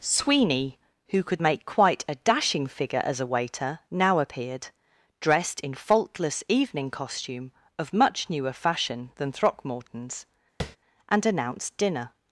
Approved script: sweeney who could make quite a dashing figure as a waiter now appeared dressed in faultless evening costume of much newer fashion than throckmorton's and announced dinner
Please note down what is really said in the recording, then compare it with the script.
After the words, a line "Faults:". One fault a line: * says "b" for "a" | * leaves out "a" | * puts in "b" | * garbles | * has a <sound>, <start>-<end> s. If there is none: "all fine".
sweeney who could make quite a dashing figure as a waiter now appeared dressed in faultless evening costume of much newer fashion than throckmorton's and announced dinner
Faults:
* has a tap, 10.6-10.8 s